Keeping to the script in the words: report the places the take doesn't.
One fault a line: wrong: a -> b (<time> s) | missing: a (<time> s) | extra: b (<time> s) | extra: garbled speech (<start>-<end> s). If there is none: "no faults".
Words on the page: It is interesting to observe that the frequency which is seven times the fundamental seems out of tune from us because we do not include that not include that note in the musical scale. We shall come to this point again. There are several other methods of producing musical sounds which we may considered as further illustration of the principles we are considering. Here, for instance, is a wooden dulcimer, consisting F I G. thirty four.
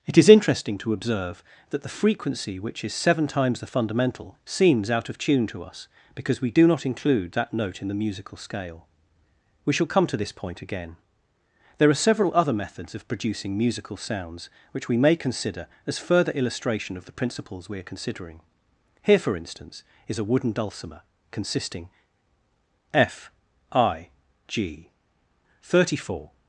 wrong: from -> to (5.5 s)
missing: not include that (7.5 s)
wrong: considered -> consider (15.2 s)